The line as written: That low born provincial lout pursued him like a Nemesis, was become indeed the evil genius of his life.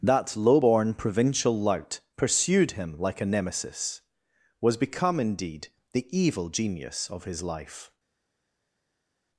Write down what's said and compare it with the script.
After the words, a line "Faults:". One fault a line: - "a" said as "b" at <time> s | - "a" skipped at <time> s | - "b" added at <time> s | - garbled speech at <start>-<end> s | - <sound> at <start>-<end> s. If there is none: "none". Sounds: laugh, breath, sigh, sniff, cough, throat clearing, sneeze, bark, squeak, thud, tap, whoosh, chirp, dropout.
That low born provincial lout pursued him like a Nemesis, was become indeed the evil genius of his life.
Faults:
none